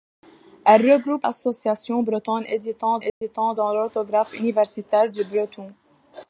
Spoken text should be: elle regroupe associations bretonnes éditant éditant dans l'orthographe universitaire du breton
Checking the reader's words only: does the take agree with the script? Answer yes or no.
yes